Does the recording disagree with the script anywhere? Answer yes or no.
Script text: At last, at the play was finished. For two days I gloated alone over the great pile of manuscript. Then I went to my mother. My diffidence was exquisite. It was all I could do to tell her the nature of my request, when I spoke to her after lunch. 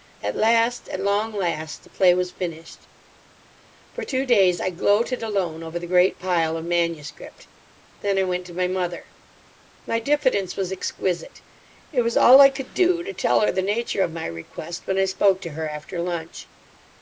yes